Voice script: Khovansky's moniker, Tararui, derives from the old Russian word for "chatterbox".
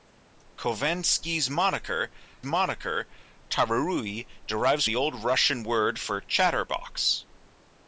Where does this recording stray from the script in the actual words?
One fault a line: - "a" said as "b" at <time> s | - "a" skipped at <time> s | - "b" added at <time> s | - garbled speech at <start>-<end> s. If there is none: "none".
- "moniker" added at 2.4 s
- "from" skipped at 4.8 s